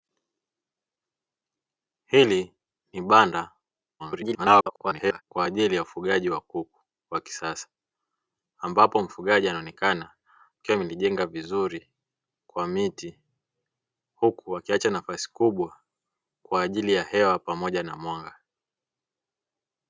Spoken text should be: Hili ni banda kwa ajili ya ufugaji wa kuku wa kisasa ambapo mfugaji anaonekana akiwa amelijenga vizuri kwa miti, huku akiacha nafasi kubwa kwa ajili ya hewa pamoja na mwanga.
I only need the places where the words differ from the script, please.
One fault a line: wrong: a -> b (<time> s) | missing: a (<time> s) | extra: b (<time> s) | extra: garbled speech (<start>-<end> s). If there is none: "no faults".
extra: garbled speech (4.0-5.2 s)